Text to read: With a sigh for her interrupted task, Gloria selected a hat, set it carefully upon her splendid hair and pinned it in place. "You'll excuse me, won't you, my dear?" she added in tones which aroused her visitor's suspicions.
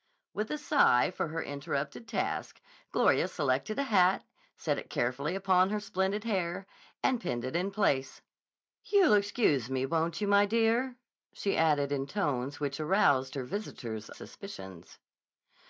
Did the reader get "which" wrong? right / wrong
right